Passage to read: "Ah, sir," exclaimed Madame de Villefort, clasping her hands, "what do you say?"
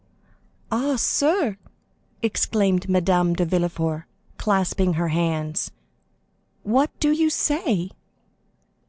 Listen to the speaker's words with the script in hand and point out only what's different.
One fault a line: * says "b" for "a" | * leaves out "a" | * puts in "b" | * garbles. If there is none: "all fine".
all fine